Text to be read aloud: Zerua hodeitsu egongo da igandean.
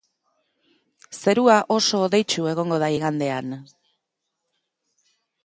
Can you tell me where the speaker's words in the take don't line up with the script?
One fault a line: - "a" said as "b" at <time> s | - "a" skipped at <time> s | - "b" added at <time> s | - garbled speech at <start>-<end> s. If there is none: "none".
- "oso" added at 1.8 s